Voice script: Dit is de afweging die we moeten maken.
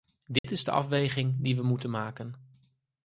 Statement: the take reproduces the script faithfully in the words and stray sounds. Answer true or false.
false